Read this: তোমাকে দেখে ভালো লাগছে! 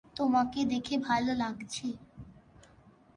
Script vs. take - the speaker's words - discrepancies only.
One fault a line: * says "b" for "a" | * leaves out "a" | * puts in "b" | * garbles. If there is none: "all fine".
all fine